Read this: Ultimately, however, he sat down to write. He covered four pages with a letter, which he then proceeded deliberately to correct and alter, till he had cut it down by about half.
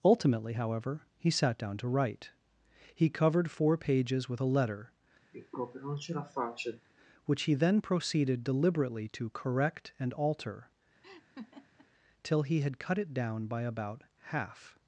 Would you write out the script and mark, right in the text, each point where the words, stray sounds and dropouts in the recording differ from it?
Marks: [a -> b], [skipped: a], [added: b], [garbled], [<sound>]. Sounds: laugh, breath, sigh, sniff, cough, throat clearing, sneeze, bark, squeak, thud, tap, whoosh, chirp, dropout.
Ultimately, however, he sat down to write. He covered four pages with a letter, [sigh] which he then proceeded deliberately to correct and alter, [laugh] till he had cut it down by about half.